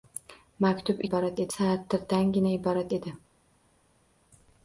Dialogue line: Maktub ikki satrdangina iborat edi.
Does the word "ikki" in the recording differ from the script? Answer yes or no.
yes